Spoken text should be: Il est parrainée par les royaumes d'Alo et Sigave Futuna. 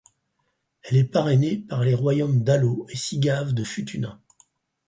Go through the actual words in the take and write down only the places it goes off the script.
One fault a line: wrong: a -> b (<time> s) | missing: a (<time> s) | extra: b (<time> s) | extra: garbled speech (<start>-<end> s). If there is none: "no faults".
wrong: Il -> Elle (0.8 s)
extra: de (3.5 s)